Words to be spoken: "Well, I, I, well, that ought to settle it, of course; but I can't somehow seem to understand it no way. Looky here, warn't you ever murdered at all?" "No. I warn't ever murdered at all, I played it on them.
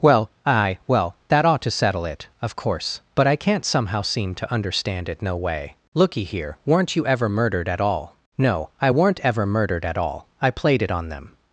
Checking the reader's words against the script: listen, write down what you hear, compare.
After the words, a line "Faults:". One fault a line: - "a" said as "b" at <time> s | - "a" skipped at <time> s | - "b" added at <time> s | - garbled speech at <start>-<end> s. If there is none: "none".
"Well, aye, well, that ought to settle it, of course; but I can't somehow seem to understand it no way. Looky here, weren't you ever murdered at all?" "No. I weren't ever murdered at all, I played it on them.
Faults:
- "I I" said as "aye" at 0.5 s
- "warn't" said as "weren't" at 6.7 s
- "warn't" said as "weren't" at 8.9 s